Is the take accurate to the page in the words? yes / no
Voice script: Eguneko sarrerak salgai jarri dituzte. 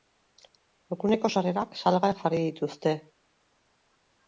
yes